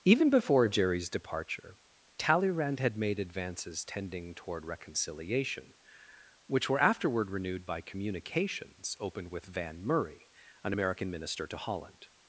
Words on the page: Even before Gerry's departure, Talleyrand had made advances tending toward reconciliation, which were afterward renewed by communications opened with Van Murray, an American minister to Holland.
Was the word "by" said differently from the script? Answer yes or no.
no